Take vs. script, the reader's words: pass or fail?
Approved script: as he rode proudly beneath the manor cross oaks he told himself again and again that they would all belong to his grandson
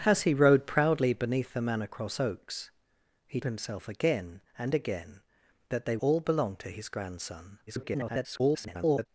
fail